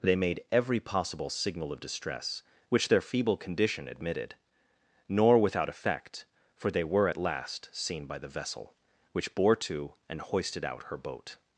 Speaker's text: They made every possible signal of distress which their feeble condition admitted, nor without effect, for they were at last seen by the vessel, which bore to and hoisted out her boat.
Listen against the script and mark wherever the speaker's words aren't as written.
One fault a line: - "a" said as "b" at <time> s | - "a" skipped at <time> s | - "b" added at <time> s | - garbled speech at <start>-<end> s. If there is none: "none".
none